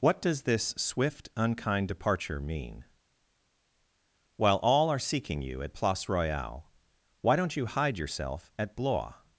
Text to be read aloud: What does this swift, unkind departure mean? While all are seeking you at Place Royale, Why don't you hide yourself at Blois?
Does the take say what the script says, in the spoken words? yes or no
yes